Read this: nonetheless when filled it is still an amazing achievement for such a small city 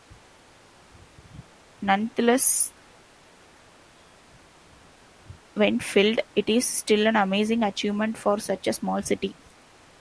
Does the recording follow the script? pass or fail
pass